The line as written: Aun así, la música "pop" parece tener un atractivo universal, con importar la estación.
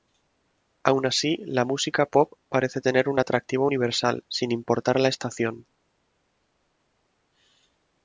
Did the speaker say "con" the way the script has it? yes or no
no